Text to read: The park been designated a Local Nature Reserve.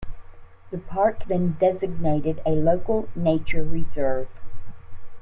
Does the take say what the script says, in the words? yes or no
yes